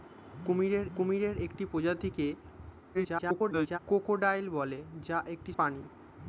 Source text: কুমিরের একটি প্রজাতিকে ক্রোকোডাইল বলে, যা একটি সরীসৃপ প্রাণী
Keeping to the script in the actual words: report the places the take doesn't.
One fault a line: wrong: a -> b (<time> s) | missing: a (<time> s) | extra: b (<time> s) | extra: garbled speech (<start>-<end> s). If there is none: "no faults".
extra: কুমিরের (1.0 s)
extra: garbled speech (2.9-3.8 s)
missing: সরীসৃপ (5.5 s)